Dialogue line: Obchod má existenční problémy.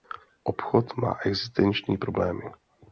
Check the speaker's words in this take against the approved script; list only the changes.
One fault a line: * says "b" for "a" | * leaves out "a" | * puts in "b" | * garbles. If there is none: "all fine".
all fine